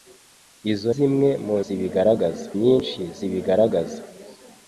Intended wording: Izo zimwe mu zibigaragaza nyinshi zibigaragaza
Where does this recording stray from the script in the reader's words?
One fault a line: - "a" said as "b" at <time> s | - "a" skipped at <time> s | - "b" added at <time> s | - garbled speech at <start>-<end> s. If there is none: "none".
none